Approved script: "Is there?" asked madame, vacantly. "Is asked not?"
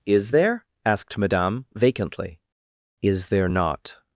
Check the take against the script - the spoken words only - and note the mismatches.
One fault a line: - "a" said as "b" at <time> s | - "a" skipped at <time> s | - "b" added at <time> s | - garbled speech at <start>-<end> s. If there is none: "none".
- "asked" said as "there" at 3.3 s